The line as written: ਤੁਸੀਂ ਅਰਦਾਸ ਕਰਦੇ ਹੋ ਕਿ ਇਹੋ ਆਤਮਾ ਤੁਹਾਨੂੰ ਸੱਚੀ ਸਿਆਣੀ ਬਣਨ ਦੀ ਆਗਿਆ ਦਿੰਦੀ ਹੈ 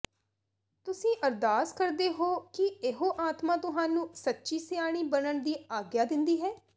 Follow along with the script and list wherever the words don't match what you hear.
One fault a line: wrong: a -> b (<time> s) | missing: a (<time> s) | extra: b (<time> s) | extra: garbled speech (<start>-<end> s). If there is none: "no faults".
no faults